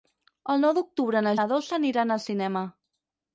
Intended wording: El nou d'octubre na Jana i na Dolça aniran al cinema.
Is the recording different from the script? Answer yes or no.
yes